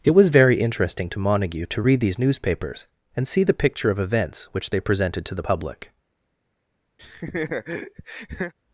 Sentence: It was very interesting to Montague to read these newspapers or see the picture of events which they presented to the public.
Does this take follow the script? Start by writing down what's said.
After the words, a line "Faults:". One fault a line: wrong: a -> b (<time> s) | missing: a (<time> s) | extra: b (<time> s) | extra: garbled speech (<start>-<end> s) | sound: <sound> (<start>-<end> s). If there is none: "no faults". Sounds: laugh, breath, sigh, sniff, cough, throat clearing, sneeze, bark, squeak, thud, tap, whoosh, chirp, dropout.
It was very interesting to Montague to read these newspapers and see the picture of events which they presented to the public.
Faults:
wrong: or -> and (3.2 s)
sound: laugh (7.0-8.5 s)